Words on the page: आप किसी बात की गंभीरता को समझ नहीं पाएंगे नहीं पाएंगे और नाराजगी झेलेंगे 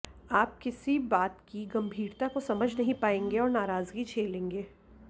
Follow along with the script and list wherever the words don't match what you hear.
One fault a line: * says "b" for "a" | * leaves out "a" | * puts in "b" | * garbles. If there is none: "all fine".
* leaves out "नहीं पाएंगे"